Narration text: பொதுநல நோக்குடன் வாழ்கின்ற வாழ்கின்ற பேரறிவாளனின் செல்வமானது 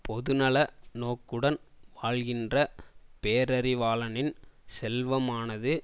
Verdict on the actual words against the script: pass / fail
fail